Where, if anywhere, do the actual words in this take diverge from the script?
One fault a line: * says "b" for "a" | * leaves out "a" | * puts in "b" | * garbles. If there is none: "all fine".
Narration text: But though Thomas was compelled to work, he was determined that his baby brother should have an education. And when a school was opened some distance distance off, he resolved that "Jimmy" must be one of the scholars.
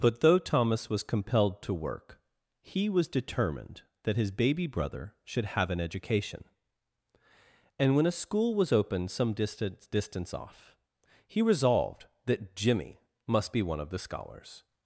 all fine